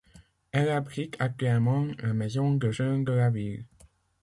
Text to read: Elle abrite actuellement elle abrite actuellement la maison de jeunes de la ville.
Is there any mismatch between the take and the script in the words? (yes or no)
yes